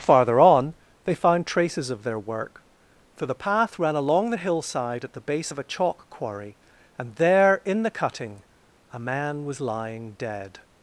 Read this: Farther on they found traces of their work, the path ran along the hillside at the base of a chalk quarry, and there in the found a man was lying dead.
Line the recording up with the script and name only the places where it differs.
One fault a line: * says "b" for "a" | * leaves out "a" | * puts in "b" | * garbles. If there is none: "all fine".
* puts in "for"
* says "cutting" for "found"